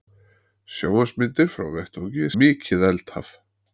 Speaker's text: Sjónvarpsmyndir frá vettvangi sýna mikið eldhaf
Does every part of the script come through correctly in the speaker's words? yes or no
no